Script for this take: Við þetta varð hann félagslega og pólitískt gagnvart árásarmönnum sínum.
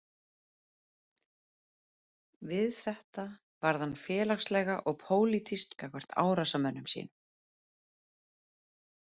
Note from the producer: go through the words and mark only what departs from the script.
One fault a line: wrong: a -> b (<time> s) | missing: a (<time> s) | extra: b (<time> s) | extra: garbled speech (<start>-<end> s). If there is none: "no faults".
no faults